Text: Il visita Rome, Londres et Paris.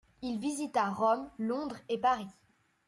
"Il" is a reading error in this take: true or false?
false